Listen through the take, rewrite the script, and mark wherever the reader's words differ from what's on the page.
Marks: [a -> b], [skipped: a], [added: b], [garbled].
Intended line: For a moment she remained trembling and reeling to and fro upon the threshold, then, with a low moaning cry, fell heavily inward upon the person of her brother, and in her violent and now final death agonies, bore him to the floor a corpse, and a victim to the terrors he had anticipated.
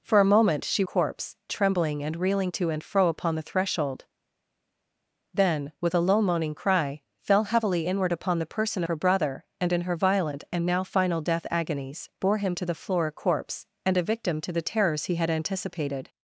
For a moment she [remained -> corpse] trembling and reeling to and fro upon the threshold, then, with a low moaning cry, fell heavily inward upon the person [skipped: of] her brother, and in her violent and now final death agonies, bore him to the floor a corpse, and a victim to the terrors he had anticipated.